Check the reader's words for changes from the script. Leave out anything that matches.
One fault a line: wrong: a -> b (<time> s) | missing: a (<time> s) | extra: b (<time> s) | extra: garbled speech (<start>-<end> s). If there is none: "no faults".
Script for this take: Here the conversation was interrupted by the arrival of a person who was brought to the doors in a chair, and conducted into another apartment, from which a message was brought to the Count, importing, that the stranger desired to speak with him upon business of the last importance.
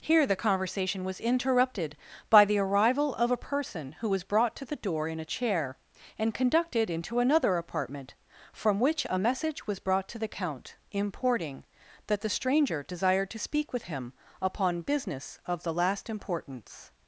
wrong: doors -> door (4.8 s)